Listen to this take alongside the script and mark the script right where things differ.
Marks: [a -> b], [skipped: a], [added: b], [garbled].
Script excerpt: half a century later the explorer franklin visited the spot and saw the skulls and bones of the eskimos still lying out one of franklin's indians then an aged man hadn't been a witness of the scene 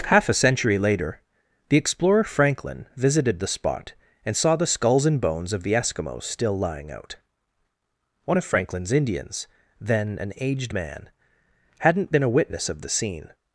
half a century later the explorer franklin visited the spot and saw the skulls and bones of the eskimos still lying out one of franklin's indians then an aged man hadn't been a witness of the scene